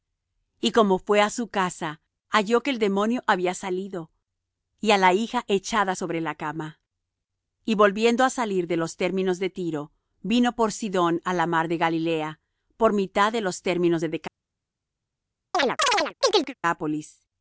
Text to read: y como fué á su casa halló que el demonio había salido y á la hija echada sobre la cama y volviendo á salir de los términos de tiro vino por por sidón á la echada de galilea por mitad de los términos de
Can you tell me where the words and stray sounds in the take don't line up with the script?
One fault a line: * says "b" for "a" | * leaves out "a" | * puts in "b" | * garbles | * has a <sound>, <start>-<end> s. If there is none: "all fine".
* leaves out "por"
* says "mar" for "echada"
* has a chirp, 15.5-16.5 s